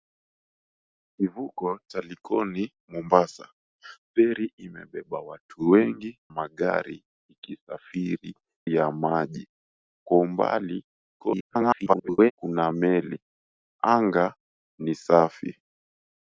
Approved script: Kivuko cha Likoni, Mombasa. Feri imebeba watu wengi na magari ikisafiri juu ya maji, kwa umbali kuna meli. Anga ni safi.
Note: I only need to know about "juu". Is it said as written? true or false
false